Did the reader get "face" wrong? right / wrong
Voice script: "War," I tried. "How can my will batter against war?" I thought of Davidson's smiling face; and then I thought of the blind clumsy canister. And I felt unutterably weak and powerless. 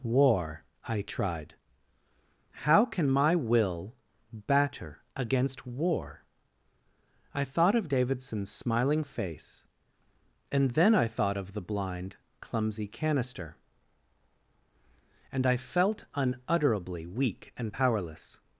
right